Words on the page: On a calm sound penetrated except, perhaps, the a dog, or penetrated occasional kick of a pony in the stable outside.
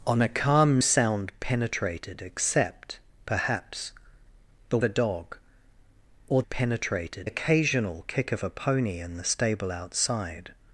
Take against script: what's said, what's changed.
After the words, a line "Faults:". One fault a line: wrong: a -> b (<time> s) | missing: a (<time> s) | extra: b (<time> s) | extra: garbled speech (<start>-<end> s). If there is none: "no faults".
On a calm sound penetrated except, perhaps, the a dog, or penetrated occasional kick of a pony in the stable outside.
Faults:
no faults